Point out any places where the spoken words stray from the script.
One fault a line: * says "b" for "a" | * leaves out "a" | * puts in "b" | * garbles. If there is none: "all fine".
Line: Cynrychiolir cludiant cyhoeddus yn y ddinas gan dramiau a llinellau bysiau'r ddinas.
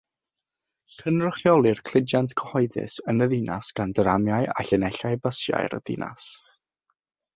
all fine